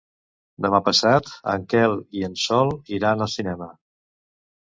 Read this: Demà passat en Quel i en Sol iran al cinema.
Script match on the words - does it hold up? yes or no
yes